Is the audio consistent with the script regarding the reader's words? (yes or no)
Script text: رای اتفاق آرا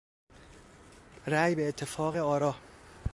no